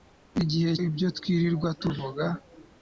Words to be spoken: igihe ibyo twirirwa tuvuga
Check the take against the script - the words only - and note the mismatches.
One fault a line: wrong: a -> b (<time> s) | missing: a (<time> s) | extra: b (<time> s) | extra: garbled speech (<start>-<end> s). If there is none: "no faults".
no faults